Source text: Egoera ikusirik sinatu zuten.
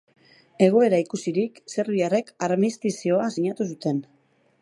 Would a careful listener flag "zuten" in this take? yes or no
no